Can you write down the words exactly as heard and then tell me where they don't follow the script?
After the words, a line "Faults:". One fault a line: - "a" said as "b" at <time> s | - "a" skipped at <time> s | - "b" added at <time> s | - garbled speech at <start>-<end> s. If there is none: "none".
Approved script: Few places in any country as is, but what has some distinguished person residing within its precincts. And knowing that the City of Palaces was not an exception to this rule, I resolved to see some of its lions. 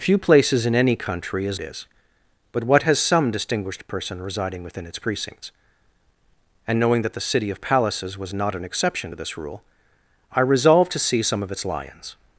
Few places in any country as is, but what has some distinguished person residing within its precincts. And knowing that the City of Palaces was not an exception to this rule, I resolved to see some of its lions.
Faults:
none